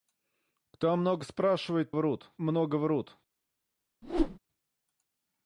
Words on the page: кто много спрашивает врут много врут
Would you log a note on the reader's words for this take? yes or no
no